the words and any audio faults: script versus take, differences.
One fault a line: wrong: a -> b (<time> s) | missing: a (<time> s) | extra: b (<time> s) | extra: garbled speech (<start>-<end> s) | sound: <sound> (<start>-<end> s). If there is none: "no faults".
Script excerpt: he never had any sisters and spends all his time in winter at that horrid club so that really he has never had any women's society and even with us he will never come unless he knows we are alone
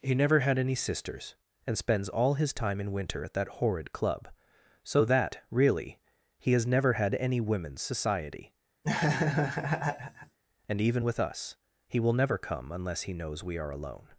sound: laugh (8.8-10.4 s)